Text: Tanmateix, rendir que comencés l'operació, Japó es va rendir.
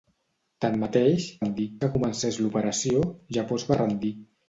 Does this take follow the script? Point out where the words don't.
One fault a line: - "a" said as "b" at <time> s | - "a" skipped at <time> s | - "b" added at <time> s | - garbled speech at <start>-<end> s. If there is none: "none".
none